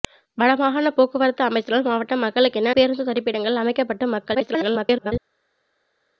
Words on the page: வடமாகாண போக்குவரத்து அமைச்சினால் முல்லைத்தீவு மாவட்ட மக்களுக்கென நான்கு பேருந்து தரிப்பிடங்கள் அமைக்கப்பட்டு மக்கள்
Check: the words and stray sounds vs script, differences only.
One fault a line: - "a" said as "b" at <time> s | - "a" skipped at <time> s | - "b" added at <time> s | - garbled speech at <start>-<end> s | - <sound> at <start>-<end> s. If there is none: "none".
- "முல்லைத்தீவு" skipped at 1.9 s
- "நான்கு" skipped at 2.7 s
- garbled speech at 4.3-5.1 s